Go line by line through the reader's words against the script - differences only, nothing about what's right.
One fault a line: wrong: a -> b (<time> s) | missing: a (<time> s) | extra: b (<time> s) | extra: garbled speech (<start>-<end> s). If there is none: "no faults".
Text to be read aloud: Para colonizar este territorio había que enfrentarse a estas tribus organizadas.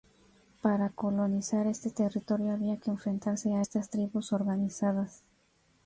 no faults